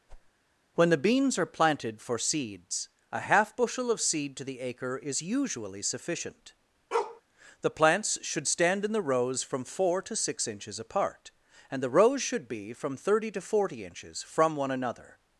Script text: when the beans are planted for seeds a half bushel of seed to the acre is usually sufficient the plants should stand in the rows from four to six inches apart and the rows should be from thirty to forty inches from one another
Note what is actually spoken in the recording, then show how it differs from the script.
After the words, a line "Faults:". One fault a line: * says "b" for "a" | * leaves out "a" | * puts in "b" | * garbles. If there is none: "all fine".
when the beans are planted for seeds a half bushel of seed to the acre is usually sufficient the plants should stand in the rows from four to six inches apart and the rows should be from thirty to forty inches from one another
Faults:
all fine